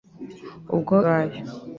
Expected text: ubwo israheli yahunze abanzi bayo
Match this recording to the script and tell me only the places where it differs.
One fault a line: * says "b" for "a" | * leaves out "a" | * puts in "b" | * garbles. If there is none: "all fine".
* leaves out "israheli yahunze abanzi"